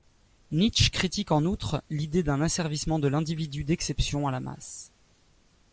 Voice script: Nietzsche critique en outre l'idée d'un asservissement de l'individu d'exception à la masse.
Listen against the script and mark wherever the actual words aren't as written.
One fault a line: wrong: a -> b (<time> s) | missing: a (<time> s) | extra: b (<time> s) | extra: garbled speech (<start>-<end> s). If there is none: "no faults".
no faults